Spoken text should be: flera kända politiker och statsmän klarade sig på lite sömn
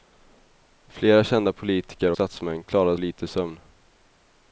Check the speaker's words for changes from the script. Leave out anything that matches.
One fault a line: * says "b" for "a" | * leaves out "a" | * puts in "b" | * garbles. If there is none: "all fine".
* leaves out "och"
* leaves out "sig på"